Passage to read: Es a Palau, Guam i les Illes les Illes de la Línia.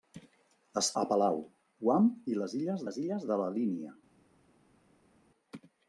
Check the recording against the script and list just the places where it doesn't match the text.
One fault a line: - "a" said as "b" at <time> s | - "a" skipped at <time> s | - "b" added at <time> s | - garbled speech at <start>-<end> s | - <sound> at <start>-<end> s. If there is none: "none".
none